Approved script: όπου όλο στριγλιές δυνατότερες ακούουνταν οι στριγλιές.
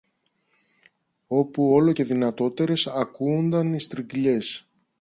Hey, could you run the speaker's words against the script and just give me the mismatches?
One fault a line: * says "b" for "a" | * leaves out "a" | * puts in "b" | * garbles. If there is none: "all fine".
* says "και" for "στριγλιές"